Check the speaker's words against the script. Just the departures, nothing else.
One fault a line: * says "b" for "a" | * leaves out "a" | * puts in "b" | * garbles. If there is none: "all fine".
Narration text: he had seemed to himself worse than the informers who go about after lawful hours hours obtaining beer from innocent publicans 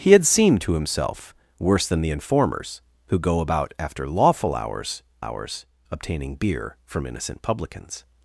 all fine